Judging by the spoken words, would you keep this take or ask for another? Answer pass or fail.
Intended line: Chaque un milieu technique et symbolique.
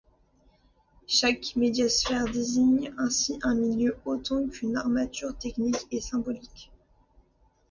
fail